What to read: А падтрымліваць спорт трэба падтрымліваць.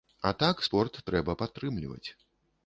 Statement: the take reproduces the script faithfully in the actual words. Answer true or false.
false